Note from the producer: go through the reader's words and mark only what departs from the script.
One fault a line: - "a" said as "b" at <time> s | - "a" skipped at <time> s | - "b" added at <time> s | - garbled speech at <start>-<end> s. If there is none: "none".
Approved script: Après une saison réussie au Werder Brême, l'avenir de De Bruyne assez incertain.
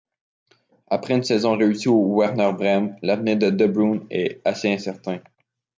- "est" added at 4.1 s